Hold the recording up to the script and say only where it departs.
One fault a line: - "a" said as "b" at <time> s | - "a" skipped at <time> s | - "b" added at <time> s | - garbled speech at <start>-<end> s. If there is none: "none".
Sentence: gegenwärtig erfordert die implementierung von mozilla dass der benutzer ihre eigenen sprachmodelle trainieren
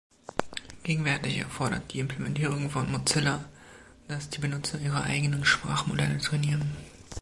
- "der" said as "die" at 4.3 s